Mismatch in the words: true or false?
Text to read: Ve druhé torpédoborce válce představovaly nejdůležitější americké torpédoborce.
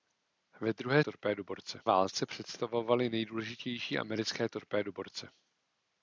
false